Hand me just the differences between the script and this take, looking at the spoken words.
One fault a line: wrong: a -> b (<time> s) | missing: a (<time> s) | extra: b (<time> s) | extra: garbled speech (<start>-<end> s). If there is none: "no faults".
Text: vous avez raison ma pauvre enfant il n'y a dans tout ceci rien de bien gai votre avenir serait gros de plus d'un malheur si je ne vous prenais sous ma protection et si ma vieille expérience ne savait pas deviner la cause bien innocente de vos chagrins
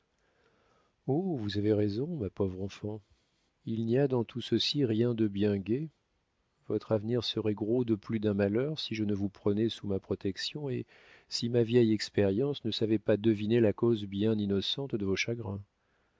no faults